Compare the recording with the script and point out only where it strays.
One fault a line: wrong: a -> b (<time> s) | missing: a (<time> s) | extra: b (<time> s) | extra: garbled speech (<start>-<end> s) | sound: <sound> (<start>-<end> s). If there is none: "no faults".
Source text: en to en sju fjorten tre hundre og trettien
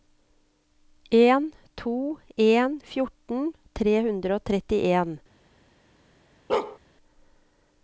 missing: sju (2.8 s)
sound: bark (6.5-6.8 s)